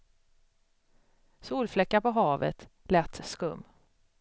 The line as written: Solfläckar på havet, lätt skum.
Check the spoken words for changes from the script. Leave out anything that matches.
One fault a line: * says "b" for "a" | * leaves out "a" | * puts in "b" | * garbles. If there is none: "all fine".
all fine